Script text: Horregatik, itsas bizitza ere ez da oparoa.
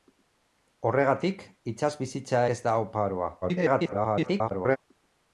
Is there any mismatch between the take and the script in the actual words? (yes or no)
yes